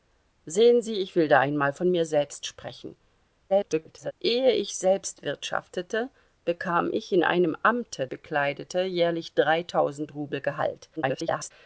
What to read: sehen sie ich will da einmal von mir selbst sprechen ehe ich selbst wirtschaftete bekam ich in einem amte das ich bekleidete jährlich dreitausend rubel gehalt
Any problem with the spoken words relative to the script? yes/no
yes